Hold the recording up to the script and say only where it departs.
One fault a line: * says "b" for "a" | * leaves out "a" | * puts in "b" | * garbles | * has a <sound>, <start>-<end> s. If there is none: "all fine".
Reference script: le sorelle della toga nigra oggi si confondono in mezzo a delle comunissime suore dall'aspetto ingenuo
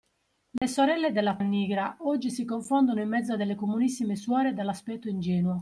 * has a dropout, 0.6-0.6 s
* leaves out "toga"